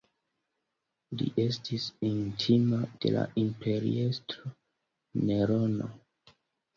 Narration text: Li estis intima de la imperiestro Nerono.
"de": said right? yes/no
yes